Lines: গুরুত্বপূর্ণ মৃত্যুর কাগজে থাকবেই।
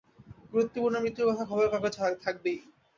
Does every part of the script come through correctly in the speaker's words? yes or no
no